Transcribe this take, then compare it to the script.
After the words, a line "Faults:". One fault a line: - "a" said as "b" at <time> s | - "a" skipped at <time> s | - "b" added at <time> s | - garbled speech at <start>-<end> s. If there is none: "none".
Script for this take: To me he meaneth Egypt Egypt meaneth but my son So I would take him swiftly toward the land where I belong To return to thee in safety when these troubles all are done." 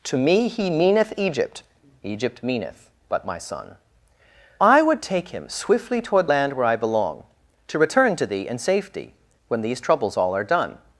To me he meaneth Egypt Egypt meaneth but my son I would take him swiftly toward land where I belong To return to thee in safety when these troubles all are done."
Faults:
- "So" skipped at 3.8 s
- "the" skipped at 6.3 s